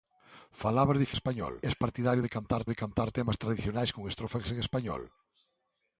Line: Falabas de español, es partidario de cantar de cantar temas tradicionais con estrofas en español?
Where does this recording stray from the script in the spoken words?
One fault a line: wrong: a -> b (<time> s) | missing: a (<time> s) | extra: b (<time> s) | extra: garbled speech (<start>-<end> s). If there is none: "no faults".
no faults